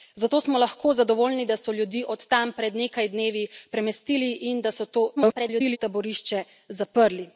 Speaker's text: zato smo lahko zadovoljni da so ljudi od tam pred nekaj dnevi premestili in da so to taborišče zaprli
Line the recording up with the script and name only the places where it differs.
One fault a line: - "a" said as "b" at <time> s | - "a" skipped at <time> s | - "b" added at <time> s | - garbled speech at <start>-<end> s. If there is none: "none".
- garbled speech at 5.2-5.8 s